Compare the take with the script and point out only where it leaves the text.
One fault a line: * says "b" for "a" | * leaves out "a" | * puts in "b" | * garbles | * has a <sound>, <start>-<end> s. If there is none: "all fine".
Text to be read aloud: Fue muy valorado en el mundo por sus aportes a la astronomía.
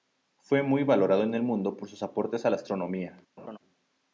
* has a laugh, 3.4-3.6 s